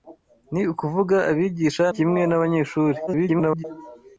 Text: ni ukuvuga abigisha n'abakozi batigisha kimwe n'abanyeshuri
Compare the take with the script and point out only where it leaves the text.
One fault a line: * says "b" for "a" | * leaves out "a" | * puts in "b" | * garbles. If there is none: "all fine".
* leaves out "n'abakozi batigisha"
* garbles